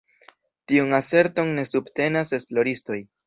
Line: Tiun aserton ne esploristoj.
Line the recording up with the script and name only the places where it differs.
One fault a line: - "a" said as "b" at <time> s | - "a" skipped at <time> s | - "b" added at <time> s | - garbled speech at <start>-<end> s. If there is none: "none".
- "subtenas" added at 1.7 s